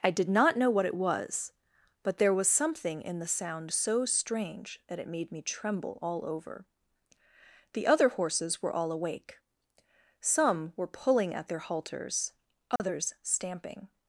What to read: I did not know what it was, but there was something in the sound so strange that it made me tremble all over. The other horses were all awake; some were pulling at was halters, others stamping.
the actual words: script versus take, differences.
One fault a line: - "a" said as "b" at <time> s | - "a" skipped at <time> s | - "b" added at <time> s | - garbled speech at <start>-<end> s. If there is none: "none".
- "was" said as "their" at 11.5 s